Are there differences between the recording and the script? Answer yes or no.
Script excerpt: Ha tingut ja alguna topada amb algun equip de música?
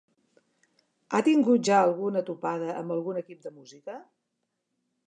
no